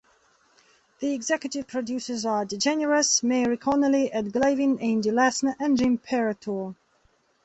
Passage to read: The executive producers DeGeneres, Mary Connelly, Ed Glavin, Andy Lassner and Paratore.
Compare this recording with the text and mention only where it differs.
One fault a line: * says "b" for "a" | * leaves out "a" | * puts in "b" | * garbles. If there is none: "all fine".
* puts in "are"
* puts in "Jim"